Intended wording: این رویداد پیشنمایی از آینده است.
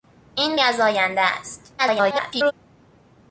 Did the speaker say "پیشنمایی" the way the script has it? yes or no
no